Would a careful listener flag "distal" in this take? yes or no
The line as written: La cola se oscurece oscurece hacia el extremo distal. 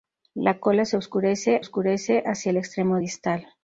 no